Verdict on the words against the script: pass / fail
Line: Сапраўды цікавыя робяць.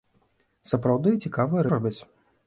pass